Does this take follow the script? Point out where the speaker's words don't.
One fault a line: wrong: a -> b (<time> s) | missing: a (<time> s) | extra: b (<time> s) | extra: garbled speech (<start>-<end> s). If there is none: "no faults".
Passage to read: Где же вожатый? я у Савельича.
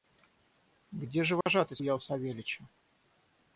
no faults